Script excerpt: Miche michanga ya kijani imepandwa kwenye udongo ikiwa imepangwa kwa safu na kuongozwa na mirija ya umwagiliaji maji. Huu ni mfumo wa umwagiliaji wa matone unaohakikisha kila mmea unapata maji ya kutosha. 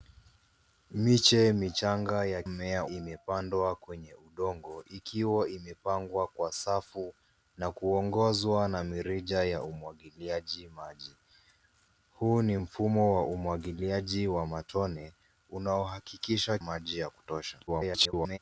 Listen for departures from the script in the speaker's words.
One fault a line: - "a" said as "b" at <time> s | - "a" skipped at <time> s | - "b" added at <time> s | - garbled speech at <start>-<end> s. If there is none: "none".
- "kijani" said as "mmea" at 2.5 s
- "kila mmea unapata" skipped at 16.6 s
- garbled speech at 17.7-18.4 s